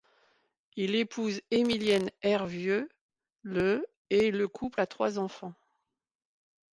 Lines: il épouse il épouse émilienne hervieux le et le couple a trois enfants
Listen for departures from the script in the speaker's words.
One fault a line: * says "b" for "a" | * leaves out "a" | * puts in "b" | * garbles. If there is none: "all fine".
* leaves out "il épouse"